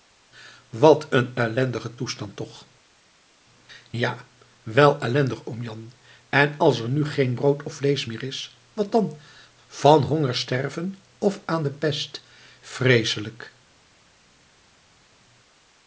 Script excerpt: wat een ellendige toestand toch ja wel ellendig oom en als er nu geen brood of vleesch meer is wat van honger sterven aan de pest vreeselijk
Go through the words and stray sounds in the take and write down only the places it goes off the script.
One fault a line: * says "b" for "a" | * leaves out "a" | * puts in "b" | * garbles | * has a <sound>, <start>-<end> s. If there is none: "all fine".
* puts in "jan"
* puts in "dan"
* puts in "of"